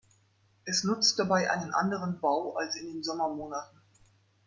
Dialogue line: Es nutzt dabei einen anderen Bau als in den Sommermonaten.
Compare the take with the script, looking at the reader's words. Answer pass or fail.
pass